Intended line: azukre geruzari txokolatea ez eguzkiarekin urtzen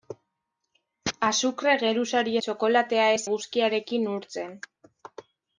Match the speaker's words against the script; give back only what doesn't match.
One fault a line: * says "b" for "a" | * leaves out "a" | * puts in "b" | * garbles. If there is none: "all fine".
all fine